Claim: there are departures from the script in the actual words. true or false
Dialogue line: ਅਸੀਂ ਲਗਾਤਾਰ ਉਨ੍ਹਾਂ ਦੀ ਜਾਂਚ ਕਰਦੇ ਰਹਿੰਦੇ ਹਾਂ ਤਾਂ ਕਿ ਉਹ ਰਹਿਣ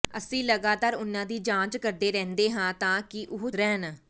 false